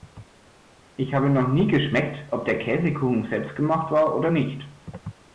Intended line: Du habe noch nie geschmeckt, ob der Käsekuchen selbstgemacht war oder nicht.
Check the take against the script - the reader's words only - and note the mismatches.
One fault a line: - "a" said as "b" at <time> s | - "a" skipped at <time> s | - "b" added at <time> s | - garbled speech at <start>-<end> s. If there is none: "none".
- "Du" said as "Ich" at 0.9 s